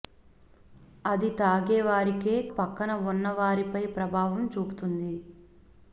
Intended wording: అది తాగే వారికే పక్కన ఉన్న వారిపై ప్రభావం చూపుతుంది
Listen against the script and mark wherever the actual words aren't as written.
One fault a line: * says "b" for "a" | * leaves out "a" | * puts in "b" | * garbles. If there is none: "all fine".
all fine